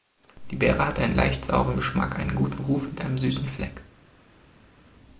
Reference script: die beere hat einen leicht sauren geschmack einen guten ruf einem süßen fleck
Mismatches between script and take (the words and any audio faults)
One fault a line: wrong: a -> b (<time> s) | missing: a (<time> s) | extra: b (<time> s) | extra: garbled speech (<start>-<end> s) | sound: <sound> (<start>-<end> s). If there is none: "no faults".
extra: mit (2.9 s)